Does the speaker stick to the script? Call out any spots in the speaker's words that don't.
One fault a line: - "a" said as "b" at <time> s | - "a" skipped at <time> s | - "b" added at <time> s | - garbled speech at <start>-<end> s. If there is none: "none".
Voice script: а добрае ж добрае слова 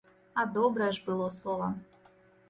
- "добрае" said as "было" at 1.1 s